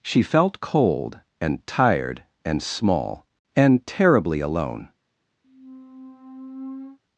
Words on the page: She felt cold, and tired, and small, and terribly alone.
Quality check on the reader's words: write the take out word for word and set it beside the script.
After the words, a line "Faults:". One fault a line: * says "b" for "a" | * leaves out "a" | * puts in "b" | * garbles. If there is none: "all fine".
She felt cold, and tired, and small, and terribly alone.
Faults:
all fine